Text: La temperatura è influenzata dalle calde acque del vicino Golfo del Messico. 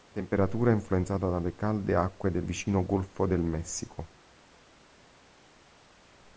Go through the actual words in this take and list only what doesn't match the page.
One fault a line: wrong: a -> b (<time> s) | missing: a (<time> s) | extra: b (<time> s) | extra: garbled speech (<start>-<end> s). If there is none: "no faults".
no faults